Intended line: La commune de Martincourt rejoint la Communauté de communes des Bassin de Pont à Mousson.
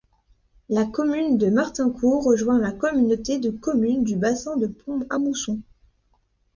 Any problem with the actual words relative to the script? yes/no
yes